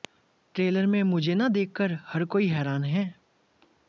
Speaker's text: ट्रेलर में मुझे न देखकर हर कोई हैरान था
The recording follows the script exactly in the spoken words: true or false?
false